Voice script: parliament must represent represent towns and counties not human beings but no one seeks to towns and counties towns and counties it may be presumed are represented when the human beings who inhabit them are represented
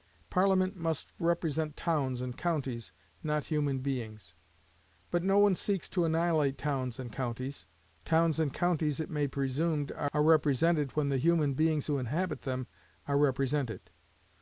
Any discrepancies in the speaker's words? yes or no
yes